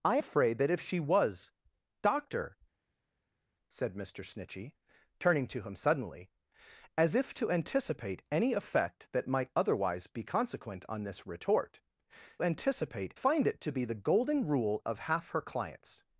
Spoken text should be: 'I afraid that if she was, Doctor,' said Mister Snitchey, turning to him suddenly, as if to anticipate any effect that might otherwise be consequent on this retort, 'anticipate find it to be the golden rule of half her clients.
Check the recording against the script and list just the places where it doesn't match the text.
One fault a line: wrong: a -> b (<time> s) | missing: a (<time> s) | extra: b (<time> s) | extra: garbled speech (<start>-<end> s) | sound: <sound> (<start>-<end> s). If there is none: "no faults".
no faults